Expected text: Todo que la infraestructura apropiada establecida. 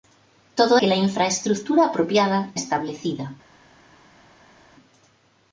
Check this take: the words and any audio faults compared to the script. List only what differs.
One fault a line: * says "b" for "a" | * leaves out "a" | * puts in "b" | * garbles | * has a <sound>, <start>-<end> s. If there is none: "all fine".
all fine